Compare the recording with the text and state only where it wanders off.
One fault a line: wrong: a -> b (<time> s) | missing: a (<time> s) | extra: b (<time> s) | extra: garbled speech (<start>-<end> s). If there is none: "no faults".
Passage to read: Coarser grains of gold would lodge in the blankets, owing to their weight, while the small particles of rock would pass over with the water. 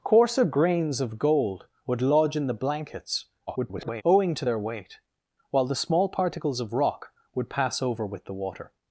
extra: garbled speech (3.5-4.0 s)